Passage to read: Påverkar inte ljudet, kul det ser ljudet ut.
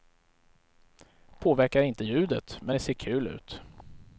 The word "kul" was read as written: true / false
false